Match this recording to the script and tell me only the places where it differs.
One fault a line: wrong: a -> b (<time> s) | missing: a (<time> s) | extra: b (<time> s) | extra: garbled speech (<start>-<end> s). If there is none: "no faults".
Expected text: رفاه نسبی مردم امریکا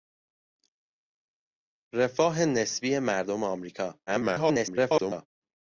extra: garbled speech (4.1-5.3 s)